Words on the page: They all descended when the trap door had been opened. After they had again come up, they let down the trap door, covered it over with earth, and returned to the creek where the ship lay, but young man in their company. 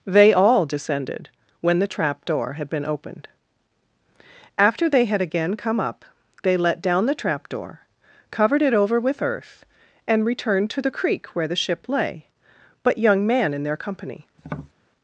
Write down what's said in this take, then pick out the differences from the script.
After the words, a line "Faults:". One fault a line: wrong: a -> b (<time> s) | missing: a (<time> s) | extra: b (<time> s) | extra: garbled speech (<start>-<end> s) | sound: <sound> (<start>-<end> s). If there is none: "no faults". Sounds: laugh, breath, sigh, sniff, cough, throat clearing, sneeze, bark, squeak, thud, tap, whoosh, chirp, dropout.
They all descended when the trap door had been opened. After they had again come up, they let down the trap door, covered it over with earth, and returned to the creek where the ship lay, but young man in their company.
Faults:
sound: tap (14.4-14.7 s)